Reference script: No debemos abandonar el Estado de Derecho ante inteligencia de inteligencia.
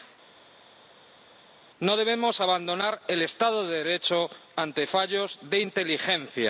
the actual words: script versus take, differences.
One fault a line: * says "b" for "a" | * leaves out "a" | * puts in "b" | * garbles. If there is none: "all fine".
* says "fallos" for "inteligencia"